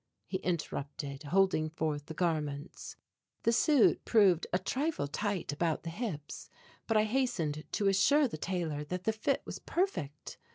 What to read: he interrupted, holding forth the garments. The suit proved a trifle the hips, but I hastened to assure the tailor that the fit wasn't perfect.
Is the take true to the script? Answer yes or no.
no